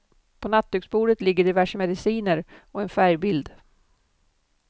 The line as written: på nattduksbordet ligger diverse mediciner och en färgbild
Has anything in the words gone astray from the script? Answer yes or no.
no